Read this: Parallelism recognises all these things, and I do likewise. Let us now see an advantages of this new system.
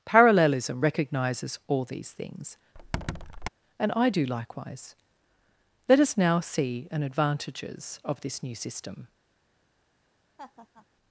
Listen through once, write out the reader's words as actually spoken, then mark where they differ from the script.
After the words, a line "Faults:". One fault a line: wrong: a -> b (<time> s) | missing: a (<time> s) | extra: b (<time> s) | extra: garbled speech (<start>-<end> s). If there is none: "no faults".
Parallelism recognises all these things, and I do likewise. Let us now see an advantages of this new system.
Faults:
no faults